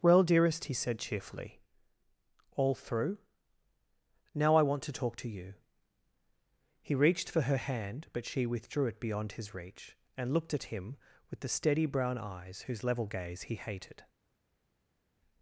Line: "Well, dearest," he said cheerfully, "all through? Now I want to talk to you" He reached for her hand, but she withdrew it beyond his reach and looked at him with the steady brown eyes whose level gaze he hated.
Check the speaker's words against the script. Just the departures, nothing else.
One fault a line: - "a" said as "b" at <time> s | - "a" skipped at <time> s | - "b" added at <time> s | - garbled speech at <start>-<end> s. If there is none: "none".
none